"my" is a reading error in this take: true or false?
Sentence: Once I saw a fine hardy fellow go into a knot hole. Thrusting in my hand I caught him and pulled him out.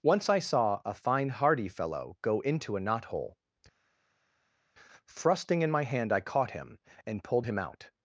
false